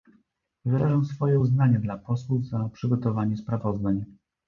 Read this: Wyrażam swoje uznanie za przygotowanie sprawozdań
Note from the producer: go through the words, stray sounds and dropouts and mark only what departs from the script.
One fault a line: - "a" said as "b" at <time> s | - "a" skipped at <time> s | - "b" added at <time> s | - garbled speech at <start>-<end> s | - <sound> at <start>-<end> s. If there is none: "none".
- "dla posłów" added at 1.8 s